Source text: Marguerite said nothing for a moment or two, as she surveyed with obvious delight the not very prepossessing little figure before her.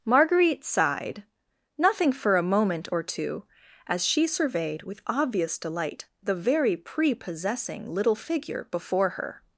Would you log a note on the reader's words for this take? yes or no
yes